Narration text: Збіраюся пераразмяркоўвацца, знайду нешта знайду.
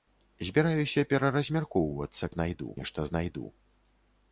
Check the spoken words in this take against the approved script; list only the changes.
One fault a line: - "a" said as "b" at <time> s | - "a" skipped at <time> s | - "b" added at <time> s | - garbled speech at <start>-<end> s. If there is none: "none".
none